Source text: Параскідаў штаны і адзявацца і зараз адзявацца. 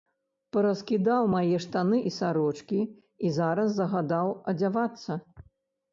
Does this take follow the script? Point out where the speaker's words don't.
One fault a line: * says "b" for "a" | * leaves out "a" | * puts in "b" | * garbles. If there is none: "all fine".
* puts in "мае"
* says "сарочкі" for "адзявацца"
* puts in "загадаў"